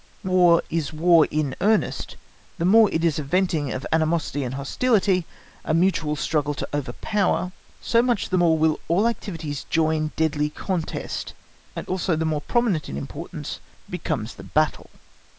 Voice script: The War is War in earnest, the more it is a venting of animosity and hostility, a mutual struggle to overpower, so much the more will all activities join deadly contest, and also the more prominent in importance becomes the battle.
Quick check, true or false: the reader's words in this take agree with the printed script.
true